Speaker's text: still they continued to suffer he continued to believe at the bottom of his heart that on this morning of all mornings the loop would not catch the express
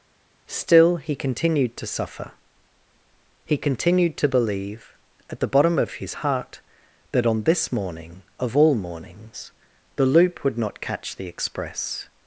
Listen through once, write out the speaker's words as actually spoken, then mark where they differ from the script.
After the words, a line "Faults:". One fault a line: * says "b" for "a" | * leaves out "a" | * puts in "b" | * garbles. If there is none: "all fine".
still he continued to suffer he continued to believe at the bottom of his heart that on this morning of all mornings the loop would not catch the express
Faults:
* says "he" for "they"